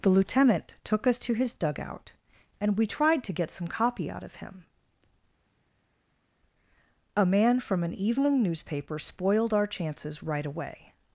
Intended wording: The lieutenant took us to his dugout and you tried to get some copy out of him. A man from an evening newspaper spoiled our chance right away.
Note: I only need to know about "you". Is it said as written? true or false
false